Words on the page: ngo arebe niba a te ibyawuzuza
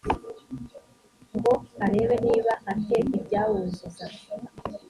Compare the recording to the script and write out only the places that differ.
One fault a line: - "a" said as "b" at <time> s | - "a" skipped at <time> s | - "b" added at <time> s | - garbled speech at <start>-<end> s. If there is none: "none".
none